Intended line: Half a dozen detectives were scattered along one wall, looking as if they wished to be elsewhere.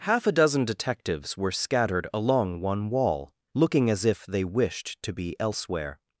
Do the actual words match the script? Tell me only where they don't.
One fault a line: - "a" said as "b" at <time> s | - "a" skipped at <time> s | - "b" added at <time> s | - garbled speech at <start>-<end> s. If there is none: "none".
none